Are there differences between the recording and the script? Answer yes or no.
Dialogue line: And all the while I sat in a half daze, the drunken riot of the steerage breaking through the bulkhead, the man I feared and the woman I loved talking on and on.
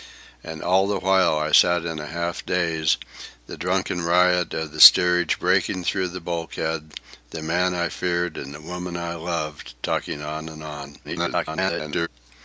yes